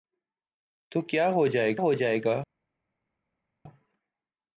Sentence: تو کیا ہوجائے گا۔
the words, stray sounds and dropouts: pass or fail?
fail